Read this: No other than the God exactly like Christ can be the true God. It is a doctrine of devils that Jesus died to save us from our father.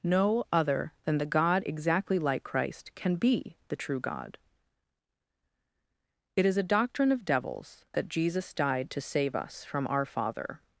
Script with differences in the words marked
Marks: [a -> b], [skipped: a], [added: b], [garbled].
No other than the God exactly like Christ can be the true God. It is a doctrine of devils that Jesus died to save us from our father.